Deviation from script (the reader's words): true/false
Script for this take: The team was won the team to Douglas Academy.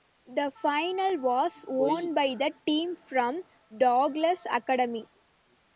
true